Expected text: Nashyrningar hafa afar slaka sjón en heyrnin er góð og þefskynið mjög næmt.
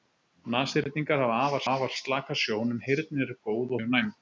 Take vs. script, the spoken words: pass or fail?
fail